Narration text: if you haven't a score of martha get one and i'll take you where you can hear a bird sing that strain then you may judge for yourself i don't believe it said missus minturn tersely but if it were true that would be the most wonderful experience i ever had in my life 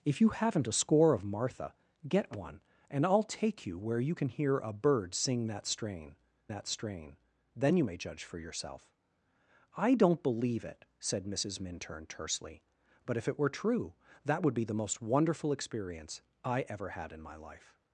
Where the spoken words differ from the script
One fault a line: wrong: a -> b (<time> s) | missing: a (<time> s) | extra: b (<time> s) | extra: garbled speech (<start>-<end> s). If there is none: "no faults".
extra: that strain (6.5 s)